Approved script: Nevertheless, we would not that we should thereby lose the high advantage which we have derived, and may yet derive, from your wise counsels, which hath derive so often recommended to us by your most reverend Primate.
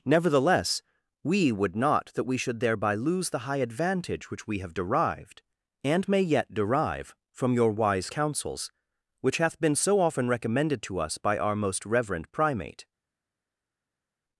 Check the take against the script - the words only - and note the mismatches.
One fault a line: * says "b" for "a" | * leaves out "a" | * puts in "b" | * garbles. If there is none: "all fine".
* says "been" for "derive"
* says "our" for "your"